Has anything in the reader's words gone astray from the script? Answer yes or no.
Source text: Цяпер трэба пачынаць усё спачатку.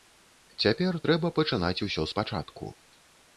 no